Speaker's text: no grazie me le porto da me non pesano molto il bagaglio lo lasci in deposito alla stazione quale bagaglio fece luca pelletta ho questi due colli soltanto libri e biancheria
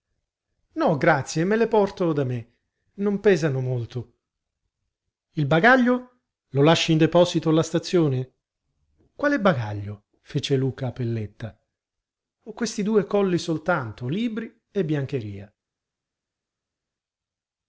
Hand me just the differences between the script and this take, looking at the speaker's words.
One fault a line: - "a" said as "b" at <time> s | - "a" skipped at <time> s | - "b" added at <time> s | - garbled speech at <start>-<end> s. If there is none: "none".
none